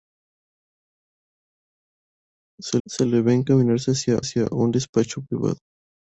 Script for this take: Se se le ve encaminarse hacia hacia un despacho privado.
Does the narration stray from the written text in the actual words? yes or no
no